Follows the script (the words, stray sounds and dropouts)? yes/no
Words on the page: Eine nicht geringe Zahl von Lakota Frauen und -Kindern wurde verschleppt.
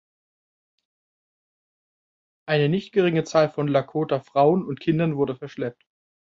yes